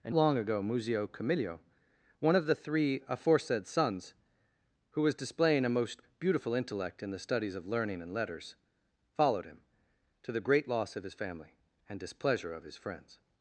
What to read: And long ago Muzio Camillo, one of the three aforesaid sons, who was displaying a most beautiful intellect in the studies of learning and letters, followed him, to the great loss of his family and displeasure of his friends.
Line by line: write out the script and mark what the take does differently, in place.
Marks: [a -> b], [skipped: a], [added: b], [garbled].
And long ago Muzio Camillo, one of the three aforesaid sons, who was displaying a most beautiful intellect in the studies of learning and letters, followed him, to the great loss of his family and displeasure of his friends.